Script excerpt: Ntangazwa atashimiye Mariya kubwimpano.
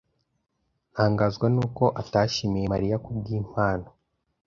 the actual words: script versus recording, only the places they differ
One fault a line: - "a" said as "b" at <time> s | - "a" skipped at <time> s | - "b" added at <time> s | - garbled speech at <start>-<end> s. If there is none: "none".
- "nuko" added at 1.5 s